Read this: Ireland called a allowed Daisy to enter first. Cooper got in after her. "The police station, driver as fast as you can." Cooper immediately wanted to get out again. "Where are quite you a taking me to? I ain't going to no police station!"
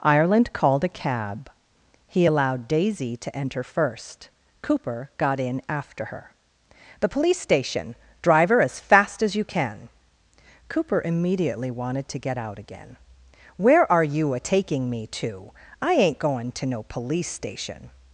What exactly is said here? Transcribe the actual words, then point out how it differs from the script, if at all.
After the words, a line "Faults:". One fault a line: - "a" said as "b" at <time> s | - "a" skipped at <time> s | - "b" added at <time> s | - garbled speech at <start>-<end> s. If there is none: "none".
Ireland called a cab. He allowed Daisy to enter first. Cooper got in after her. "The police station, driver as fast as you can." Cooper immediately wanted to get out again. "Where are you a taking me to? I ain't going to no police station!"
Faults:
- "cab He" added at 0.9 s
- "quite" skipped at 14.0 s